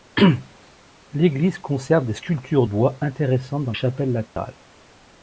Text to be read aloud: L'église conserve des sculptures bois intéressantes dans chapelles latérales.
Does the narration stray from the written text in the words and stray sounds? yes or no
yes